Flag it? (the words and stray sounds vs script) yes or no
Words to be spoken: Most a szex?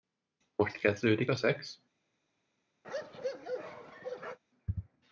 yes